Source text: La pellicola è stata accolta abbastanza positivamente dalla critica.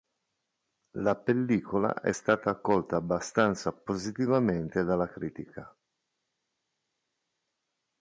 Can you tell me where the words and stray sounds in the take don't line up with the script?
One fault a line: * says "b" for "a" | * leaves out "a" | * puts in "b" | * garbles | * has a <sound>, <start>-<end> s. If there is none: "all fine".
all fine